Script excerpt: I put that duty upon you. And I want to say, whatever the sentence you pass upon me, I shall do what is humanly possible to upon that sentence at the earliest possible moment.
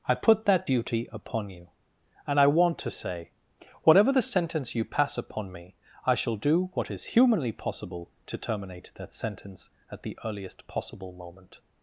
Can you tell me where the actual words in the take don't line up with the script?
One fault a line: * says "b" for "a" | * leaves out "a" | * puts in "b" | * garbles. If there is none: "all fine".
* says "terminate" for "upon"